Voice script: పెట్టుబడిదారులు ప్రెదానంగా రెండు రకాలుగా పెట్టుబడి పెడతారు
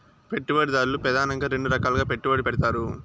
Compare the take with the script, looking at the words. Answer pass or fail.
pass